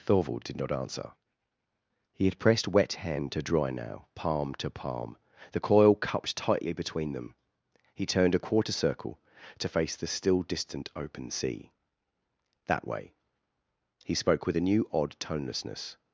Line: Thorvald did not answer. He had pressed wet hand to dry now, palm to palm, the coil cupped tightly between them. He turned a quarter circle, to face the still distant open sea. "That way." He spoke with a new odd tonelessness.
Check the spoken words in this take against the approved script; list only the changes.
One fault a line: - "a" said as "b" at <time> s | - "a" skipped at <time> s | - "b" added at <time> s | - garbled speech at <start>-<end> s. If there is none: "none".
none